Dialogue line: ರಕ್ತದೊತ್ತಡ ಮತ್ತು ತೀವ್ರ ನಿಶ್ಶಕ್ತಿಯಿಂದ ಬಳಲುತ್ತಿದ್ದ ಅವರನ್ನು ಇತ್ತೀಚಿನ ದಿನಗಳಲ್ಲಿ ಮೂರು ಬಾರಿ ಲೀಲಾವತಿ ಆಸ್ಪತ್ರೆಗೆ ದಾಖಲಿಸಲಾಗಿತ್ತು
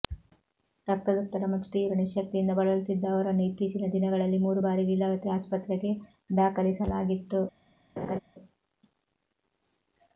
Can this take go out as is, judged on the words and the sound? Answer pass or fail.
fail